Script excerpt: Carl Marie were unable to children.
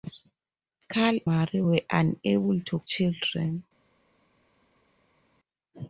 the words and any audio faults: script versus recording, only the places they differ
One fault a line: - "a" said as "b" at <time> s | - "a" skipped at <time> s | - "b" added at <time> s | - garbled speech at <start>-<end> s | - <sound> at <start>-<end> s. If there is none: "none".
none